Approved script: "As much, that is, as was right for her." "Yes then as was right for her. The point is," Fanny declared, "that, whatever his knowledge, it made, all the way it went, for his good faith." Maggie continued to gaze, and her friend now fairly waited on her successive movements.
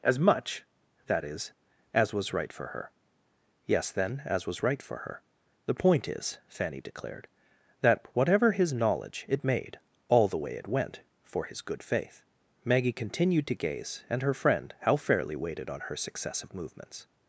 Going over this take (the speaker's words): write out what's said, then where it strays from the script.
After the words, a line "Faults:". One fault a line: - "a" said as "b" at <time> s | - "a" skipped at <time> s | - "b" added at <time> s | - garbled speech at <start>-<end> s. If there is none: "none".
"As much, that is, as was right for her." "Yes then as was right for her. The point is," Fanny declared, "that, whatever his knowledge, it made, all the way it went, for his good faith." Maggie continued to gaze, and her friend how fairly waited on her successive movements.
Faults:
- "now" said as "how" at 14.8 s